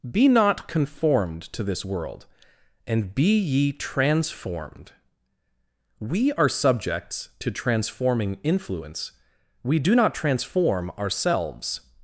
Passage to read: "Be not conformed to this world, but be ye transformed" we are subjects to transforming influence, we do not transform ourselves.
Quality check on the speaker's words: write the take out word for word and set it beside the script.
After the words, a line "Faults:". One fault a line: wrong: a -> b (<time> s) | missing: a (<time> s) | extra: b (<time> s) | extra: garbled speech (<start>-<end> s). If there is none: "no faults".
"Be not conformed to this world, and be ye transformed" we are subjects to transforming influence, we do not transform ourselves.
Faults:
wrong: but -> and (2.9 s)